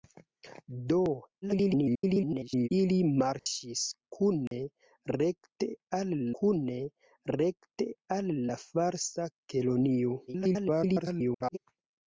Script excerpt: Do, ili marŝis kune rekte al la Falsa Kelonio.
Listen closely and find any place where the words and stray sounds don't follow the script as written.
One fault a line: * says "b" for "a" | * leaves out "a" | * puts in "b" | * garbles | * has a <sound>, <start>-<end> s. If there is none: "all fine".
* garbles
* has a dropout, 3.4-3.5 s
* has a dropout, 4.5-4.5 s
* puts in "kune rekte al"
* garbles